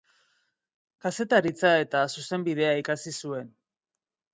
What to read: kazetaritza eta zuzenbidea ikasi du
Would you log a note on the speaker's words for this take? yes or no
yes